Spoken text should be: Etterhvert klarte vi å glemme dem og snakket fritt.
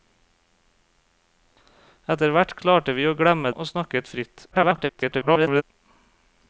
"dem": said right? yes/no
no